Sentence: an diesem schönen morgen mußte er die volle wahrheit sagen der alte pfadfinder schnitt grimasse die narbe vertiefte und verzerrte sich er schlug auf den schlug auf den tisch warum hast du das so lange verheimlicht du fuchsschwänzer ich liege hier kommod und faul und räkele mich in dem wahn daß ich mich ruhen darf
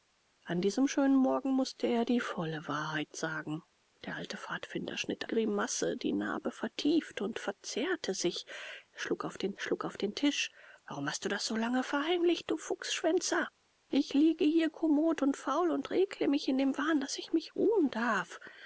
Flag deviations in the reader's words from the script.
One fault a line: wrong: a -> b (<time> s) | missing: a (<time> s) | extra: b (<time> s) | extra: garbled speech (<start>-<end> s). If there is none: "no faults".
no faults